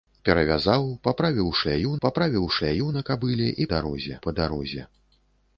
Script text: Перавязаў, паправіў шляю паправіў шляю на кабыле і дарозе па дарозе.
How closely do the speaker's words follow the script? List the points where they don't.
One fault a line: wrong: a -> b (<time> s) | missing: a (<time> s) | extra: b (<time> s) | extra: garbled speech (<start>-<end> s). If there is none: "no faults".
no faults